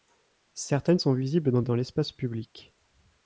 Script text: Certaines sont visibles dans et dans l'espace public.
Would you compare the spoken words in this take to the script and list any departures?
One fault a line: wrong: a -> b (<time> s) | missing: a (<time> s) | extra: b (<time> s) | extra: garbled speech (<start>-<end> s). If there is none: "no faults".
no faults